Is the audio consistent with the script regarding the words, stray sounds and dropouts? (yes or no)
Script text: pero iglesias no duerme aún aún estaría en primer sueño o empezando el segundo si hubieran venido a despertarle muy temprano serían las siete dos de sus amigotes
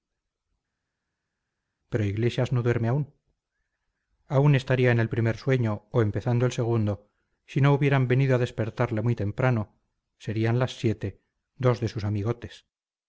no